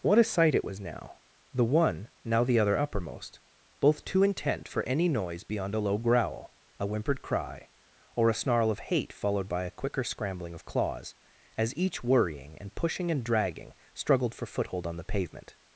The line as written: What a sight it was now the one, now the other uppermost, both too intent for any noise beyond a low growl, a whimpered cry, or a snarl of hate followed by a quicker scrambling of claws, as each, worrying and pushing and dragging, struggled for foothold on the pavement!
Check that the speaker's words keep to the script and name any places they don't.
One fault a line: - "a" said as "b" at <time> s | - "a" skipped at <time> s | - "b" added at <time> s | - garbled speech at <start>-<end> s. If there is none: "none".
none